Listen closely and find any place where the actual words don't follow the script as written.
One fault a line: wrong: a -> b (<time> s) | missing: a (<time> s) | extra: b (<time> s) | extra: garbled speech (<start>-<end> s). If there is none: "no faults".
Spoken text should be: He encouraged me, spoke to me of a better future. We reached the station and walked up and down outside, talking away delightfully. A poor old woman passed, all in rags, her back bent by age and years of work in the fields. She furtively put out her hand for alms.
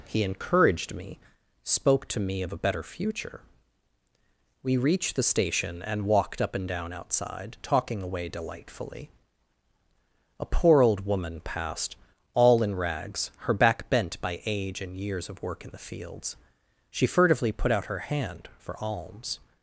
no faults